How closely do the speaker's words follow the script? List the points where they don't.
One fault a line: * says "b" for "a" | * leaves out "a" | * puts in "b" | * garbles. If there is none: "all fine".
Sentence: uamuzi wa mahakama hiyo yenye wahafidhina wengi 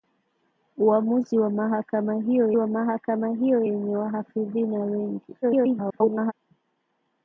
* puts in "wa mahakama hiyo"
* garbles